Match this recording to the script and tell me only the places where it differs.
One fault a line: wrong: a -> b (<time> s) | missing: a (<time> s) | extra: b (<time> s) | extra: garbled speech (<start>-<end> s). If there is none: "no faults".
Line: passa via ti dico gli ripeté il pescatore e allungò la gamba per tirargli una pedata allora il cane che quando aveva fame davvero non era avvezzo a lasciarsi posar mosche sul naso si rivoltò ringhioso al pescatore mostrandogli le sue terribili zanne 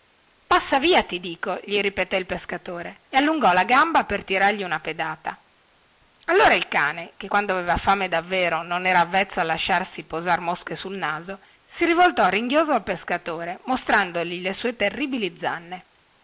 no faults